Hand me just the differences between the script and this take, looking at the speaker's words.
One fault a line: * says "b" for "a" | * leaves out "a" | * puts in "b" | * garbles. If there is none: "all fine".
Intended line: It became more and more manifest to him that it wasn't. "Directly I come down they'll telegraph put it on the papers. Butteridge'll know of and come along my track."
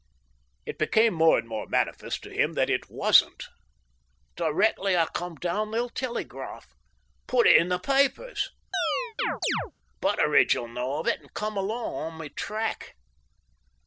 * says "in" for "on"
* puts in "it"
* puts in "on"